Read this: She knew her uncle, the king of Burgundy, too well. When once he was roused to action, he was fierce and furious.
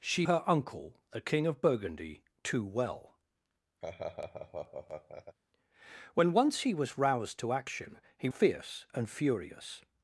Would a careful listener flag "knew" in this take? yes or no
yes